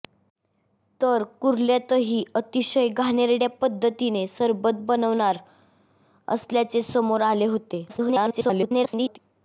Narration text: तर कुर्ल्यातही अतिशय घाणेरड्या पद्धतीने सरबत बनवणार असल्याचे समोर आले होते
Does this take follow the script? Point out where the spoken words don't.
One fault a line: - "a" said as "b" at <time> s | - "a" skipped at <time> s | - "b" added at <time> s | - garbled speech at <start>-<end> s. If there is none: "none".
- garbled speech at 7.9-9.2 s